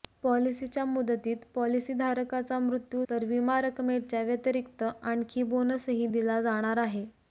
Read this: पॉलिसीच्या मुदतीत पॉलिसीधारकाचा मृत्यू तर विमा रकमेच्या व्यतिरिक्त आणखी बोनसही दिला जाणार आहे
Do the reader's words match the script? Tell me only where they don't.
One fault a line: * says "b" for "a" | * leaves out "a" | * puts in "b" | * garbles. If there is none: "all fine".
all fine